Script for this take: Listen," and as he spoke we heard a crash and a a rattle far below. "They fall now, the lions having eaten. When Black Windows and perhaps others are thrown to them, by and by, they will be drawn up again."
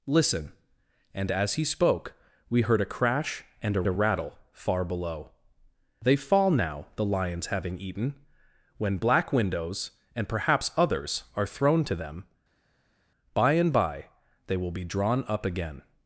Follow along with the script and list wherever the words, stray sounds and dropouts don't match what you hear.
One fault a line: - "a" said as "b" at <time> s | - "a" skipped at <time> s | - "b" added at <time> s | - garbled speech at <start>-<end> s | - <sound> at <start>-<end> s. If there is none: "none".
none